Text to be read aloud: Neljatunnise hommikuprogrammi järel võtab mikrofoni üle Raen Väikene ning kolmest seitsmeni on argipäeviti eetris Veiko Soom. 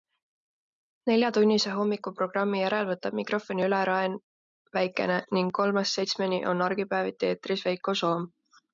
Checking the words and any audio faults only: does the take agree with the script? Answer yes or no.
yes